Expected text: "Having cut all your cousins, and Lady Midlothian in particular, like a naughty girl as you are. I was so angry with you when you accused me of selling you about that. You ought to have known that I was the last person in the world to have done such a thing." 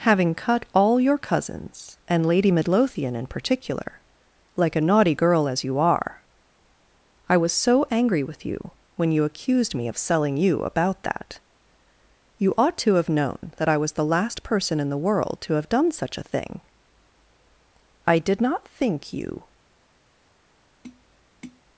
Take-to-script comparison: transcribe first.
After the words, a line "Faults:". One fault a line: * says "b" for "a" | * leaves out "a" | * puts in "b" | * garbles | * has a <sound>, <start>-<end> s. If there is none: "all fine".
"Having cut all your cousins, and Lady Midlothian in particular, like a naughty girl as you are. I was so angry with you when you accused me of selling you about that. You ought to have known that I was the last person in the world to have done such a thing." "I did not think you
Faults:
* puts in "I did not think you"
* has a tap, 20.8-21.6 s